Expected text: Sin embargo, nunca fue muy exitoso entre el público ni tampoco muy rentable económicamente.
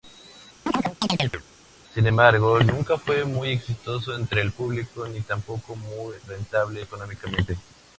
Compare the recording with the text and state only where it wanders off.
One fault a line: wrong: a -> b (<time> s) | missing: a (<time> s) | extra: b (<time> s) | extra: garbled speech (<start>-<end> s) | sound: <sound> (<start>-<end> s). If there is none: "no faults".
sound: chirp (0.7-1.4 s)